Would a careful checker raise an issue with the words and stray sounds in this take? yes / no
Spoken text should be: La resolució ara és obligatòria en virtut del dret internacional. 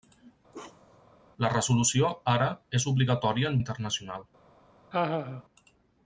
yes